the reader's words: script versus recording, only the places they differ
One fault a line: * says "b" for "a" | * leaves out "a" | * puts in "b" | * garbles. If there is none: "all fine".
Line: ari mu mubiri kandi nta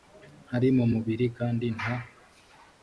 all fine